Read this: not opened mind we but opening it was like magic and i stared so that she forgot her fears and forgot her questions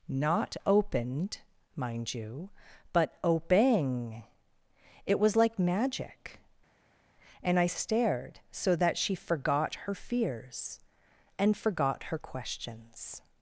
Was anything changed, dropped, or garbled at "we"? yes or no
yes